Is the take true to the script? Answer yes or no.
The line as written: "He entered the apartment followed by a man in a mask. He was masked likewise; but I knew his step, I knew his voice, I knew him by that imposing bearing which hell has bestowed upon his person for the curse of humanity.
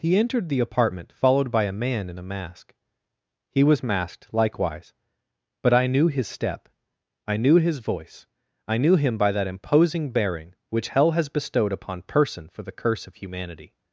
no